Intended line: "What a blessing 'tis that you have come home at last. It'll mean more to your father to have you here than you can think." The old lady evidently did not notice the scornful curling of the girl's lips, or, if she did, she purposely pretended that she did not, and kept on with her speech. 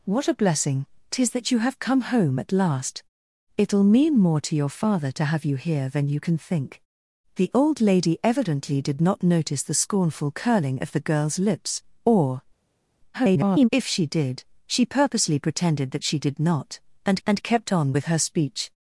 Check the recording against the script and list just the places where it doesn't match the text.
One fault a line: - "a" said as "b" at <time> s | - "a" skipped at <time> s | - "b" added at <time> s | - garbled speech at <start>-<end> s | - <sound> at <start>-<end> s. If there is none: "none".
- garbled speech at 13.1-13.7 s
- "and" added at 17.3 s